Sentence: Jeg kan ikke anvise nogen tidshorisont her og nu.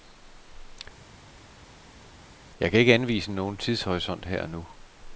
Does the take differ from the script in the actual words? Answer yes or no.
no